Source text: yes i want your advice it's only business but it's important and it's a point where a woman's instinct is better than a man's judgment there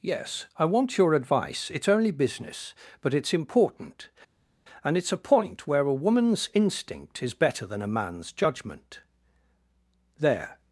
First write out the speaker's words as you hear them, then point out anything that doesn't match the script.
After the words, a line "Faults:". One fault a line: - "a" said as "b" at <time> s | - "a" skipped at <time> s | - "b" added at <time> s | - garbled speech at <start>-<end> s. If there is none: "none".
yes i want your advice it's only business but it's important and it's a point where a woman's instinct is better than a man's judgment there
Faults:
none